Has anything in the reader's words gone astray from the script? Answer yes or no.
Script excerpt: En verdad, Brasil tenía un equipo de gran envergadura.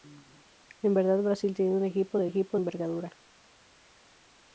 yes